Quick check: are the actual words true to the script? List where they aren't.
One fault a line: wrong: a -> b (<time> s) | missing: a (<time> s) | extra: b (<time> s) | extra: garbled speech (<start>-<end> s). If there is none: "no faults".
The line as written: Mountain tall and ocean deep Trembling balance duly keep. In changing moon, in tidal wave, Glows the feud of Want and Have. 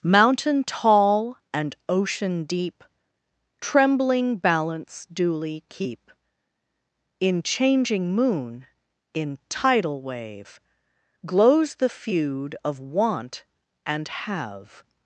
no faults